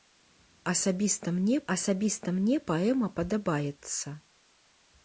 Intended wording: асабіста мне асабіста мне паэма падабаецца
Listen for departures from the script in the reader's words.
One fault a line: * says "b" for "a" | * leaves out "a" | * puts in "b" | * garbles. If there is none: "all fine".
all fine